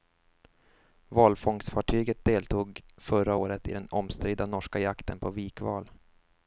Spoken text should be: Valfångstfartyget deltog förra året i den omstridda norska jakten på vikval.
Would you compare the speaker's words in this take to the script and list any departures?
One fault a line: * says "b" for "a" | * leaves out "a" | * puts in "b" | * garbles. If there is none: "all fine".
all fine